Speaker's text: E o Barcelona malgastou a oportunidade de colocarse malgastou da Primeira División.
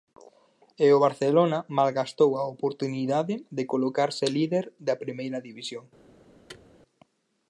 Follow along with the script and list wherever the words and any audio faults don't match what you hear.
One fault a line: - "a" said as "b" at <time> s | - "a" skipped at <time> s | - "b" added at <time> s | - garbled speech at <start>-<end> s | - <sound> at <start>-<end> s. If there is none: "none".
- "malgastou" said as "líder" at 4.4 s
- thud at 6.5-6.7 s